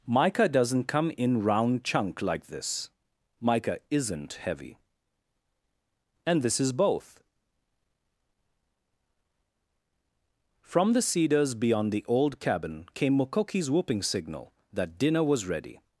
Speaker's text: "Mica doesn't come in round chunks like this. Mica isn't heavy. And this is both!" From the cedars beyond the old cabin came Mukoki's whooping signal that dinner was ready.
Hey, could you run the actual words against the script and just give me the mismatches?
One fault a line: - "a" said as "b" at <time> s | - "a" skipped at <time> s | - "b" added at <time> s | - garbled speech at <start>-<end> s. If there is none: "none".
- "chunks" said as "chunk" at 1.8 s